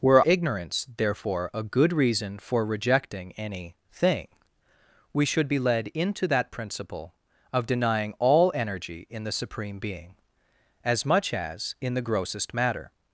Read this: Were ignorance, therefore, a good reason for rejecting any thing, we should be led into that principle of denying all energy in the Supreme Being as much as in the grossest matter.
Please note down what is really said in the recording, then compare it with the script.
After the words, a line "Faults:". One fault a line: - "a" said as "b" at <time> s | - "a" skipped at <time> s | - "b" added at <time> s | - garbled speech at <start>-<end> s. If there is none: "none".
Were ignorance, therefore, a good reason for rejecting any thing, we should be led into that principle of denying all energy in the Supreme Being as much as in the grossest matter.
Faults:
none